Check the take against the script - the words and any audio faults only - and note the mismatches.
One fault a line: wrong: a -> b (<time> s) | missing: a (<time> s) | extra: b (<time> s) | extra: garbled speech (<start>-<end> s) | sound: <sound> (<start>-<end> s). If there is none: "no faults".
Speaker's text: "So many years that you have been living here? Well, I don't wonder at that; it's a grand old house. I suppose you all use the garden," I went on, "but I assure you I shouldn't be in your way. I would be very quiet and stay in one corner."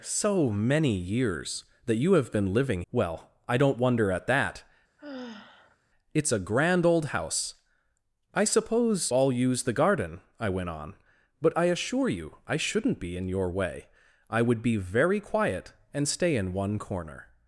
missing: here (2.8 s)
sound: sigh (5.0-5.8 s)
missing: you (9.1 s)